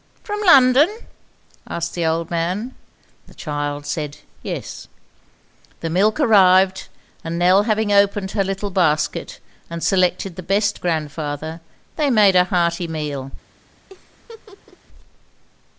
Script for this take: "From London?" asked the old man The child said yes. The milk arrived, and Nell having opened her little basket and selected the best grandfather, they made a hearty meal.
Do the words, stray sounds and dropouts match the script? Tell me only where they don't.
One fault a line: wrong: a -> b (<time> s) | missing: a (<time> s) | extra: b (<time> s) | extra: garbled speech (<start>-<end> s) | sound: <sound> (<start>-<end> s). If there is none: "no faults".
sound: laugh (13.9-14.8 s)